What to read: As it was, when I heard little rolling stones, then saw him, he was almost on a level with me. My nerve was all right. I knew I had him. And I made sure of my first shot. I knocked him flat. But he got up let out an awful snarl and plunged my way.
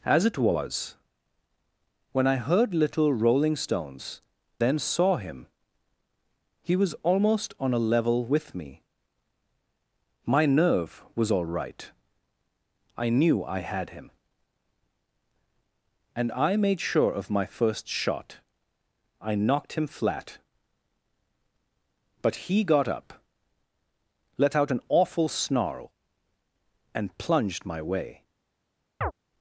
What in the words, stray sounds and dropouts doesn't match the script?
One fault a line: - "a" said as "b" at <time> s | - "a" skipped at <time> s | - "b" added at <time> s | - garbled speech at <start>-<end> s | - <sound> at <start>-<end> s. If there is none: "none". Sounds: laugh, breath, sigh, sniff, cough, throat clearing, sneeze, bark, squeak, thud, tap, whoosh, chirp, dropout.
- chirp at 29.0-29.1 s